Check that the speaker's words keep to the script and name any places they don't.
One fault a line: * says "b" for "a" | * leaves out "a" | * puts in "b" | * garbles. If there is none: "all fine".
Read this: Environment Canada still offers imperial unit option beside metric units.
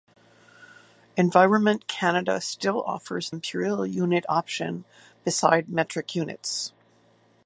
all fine